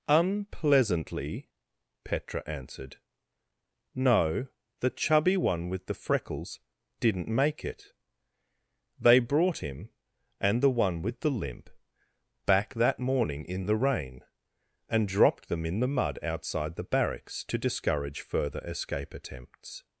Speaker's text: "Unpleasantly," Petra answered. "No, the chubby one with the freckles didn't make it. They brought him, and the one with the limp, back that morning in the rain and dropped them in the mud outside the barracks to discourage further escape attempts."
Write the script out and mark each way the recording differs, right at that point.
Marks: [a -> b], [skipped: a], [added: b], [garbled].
"Unpleasantly," Petra answered. "No, the chubby one with the freckles didn't make it. They brought him, and the one with the limp, back that morning in the rain and dropped them in the mud outside the barracks to discourage further escape attempts."